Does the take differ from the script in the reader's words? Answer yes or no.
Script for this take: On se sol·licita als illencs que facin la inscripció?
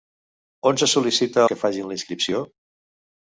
yes